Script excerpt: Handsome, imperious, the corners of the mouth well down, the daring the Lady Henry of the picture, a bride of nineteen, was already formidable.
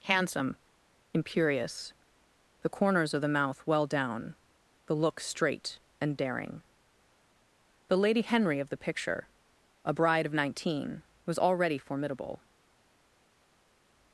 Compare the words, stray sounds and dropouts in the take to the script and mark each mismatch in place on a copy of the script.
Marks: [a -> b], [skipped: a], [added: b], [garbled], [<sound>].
Handsome, imperious, the corners of the mouth well down, the [added: look straight and] daring the Lady Henry of the picture, a bride of nineteen, was already formidable.